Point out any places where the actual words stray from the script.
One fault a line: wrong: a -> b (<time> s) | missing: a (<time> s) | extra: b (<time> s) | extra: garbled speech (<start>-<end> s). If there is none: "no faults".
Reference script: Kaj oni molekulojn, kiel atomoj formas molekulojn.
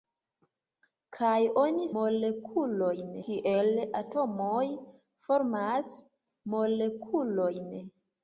no faults